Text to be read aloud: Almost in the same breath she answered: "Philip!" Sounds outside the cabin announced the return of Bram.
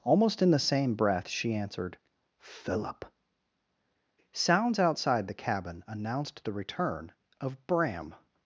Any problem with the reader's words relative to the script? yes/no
no